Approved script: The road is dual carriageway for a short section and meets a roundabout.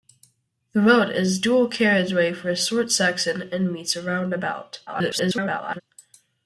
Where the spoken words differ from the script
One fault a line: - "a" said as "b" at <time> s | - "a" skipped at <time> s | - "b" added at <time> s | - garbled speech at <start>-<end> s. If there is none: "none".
- garbled speech at 4.9-5.8 s